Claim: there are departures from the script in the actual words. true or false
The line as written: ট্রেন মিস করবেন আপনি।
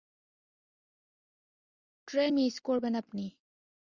false